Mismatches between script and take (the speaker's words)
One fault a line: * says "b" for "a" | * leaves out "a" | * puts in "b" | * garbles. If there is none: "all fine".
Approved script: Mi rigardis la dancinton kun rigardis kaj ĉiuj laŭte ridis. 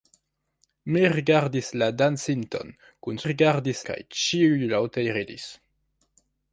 all fine